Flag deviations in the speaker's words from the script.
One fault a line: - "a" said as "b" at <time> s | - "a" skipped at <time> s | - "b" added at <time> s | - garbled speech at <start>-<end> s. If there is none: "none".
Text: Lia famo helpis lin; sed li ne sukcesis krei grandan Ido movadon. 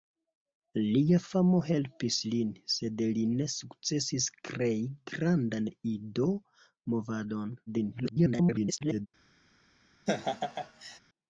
- garbled speech at 7.7-9.1 s